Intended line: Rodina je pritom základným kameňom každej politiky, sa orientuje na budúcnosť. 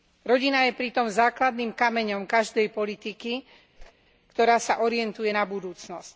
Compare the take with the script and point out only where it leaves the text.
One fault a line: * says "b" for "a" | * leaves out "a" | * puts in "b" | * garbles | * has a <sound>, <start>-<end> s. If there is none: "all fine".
* has a whoosh, 3.8-3.9 s
* puts in "ktorá"